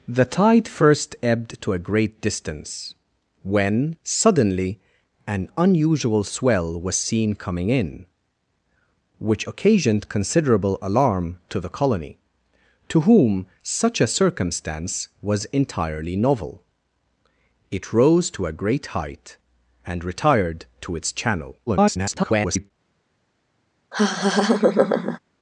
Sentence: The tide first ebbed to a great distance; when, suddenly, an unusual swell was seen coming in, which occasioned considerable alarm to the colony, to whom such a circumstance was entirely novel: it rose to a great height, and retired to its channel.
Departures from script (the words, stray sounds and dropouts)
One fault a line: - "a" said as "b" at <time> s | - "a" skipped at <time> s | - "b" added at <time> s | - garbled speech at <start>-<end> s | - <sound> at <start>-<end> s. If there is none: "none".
- garbled speech at 21.7-22.7 s
- laugh at 23.9-25.2 s